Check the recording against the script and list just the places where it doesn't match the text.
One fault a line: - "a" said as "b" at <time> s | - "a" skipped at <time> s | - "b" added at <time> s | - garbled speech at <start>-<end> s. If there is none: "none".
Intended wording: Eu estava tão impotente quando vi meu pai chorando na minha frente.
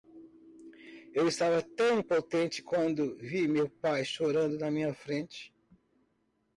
none